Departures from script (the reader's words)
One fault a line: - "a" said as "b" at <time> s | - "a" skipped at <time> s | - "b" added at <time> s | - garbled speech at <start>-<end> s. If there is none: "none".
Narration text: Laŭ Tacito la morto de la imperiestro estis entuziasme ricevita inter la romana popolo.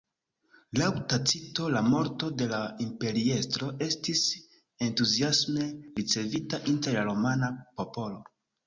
none